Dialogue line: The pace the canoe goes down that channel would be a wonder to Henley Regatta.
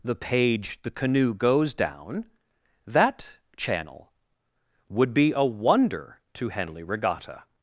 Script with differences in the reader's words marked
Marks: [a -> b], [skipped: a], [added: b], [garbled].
The [pace -> page] the canoe goes down that channel would be a wonder to Henley Regatta.